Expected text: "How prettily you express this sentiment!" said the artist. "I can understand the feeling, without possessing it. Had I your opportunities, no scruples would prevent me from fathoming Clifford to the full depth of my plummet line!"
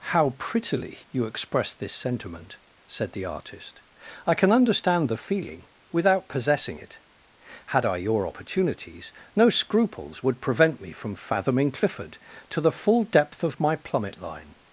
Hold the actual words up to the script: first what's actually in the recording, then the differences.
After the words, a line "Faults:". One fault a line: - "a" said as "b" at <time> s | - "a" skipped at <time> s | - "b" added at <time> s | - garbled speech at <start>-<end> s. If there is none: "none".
"How prettily you express this sentiment!" said the artist. "I can understand the feeling, without possessing it. Had I your opportunities, no scruples would prevent me from fathoming Clifford to the full depth of my plummet line!"
Faults:
none